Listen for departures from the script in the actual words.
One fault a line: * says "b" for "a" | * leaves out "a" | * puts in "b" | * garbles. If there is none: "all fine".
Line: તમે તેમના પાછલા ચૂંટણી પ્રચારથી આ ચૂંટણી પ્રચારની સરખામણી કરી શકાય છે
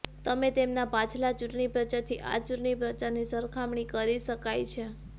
all fine